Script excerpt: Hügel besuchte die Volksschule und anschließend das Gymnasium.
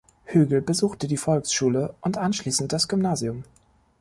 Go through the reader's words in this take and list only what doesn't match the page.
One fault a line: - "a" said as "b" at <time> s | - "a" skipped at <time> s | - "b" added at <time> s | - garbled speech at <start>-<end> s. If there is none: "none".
none